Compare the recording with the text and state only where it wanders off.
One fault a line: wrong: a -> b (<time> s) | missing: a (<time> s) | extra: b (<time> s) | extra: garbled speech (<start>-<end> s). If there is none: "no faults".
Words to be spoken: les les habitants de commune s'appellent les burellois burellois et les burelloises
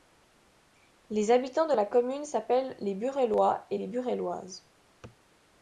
missing: les (1.3 s)
extra: la (1.8 s)
missing: burellois (3.7 s)